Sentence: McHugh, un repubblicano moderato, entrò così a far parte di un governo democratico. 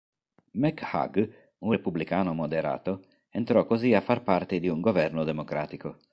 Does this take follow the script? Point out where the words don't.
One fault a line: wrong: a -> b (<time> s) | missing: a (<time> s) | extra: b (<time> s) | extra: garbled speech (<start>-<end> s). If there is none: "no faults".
no faults